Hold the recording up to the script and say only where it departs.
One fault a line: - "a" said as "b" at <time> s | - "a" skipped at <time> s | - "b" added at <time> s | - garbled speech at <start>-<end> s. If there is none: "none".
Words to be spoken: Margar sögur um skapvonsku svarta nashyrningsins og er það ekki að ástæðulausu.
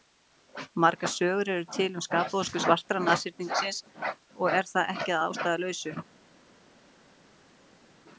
- "eru til" added at 1.6 s